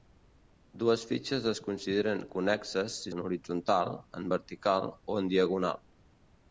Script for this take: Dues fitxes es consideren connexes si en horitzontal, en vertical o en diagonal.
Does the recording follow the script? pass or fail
pass